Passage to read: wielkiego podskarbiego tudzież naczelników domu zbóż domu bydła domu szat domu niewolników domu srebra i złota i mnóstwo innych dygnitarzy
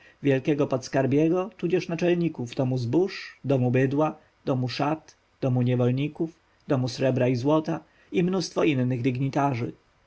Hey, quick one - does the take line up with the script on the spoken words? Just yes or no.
yes